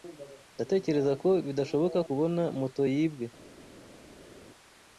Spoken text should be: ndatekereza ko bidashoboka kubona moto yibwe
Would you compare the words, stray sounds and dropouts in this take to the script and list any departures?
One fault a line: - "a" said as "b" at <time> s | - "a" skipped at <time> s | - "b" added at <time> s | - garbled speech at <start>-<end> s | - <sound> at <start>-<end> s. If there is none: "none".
none